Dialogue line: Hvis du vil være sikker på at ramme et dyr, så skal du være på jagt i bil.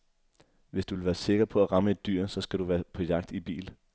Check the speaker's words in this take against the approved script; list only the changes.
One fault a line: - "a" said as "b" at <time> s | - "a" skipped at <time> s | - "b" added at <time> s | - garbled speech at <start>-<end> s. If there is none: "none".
none